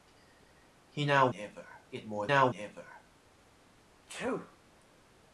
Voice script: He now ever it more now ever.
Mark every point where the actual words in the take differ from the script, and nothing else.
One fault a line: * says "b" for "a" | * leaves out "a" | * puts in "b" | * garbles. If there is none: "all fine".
all fine